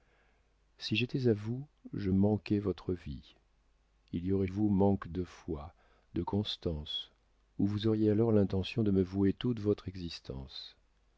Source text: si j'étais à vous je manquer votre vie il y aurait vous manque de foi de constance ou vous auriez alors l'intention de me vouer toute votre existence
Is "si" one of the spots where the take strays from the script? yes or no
no